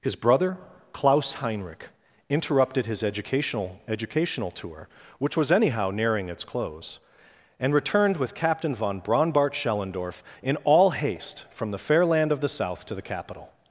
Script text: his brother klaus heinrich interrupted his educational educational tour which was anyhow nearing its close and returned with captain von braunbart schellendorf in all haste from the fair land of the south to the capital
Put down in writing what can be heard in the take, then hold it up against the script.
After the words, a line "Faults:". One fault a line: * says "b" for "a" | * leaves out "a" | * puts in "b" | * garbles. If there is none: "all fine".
his brother klaus heinrich interrupted his educational educational tour which was anyhow nearing its close and returned with captain von braunbart schellendorf in all haste from the fair land of the south to the capital
Faults:
all fine